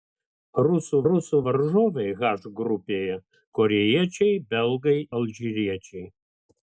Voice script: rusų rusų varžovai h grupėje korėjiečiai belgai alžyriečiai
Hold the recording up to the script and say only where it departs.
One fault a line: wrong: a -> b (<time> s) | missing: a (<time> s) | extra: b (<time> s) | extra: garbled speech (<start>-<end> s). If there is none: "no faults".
no faults